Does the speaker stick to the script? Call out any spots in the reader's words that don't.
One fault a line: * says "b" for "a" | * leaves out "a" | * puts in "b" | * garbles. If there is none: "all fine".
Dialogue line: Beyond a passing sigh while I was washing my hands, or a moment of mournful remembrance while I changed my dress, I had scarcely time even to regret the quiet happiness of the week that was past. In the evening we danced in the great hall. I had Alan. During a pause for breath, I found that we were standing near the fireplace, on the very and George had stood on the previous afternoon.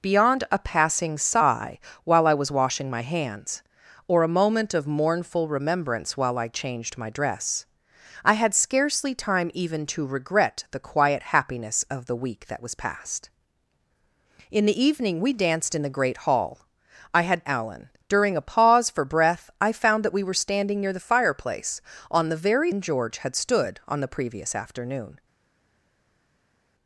all fine